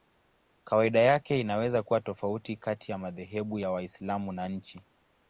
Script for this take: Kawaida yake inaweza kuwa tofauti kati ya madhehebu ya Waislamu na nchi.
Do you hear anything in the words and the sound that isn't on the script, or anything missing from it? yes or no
no